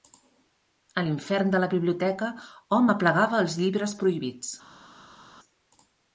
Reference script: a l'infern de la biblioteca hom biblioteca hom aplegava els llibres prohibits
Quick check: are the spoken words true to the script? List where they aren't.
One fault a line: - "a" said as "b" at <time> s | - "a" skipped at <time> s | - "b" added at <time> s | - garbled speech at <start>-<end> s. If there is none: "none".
- "biblioteca hom" skipped at 2.9 s